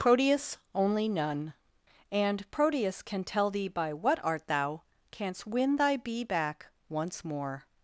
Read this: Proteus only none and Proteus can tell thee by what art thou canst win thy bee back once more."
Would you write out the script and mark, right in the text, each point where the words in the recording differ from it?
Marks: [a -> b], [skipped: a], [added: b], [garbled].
Proteus only none and Proteus can tell thee by what art thou canst win thy bee back once more."